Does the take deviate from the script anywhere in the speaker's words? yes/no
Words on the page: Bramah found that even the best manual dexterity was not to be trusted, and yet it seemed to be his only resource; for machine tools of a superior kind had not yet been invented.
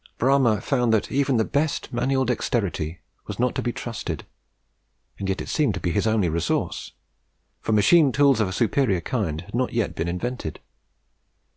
no